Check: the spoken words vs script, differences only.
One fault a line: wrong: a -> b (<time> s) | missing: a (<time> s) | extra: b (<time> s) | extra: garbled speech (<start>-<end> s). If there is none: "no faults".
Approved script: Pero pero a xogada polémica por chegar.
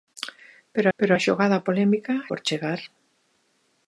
no faults